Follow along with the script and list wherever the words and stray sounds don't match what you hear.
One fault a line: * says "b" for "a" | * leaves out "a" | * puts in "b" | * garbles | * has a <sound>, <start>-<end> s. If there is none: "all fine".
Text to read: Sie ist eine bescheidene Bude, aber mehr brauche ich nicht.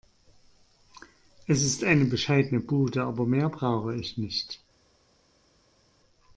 * says "Es" for "Sie"